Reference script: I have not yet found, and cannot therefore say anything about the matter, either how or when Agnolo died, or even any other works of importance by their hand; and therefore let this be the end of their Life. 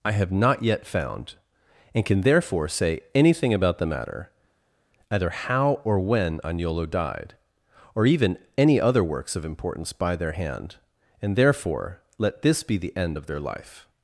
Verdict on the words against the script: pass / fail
fail